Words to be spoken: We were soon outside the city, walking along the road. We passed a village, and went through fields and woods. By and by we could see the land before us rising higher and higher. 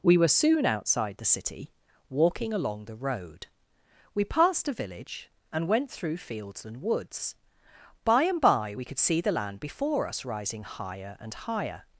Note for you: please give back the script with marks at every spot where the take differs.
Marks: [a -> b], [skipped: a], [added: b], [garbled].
We were soon outside the city, walking along the road. We passed a village, and went through fields and woods. By and by we could see the land before us rising higher and higher.